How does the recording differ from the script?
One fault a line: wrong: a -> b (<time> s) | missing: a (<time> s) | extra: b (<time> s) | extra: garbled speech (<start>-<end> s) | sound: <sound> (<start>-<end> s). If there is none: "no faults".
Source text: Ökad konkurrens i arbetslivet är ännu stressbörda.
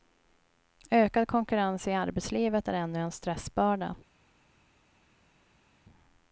extra: en (3.0 s)